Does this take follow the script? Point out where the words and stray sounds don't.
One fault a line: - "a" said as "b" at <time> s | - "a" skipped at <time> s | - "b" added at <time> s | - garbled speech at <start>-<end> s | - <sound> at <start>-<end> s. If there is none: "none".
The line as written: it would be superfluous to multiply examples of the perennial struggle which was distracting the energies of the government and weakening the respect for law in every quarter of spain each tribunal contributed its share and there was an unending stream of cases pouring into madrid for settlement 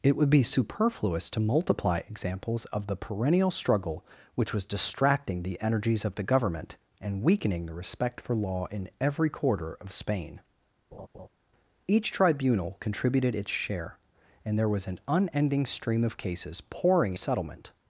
- laugh at 10.9-11.3 s
- "into madrid for" skipped at 17.1 s